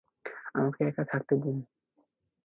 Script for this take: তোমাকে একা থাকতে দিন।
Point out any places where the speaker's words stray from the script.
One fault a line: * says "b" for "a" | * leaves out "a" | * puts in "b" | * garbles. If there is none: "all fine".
* says "আমাকে" for "তোমাকে"